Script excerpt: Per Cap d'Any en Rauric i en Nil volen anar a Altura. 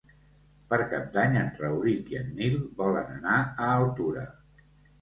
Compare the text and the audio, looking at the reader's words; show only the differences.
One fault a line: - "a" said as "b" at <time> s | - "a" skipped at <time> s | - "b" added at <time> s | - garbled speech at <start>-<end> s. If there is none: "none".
none